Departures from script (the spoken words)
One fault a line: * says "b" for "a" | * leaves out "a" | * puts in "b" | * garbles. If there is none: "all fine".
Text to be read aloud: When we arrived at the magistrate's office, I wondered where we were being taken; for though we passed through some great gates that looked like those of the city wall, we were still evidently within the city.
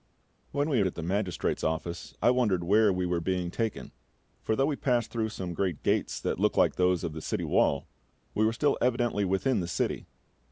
* leaves out "arrived"